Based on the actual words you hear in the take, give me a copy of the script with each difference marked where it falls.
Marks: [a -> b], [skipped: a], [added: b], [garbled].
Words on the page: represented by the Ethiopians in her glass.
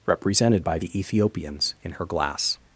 represented by the Ethiopians in her glass.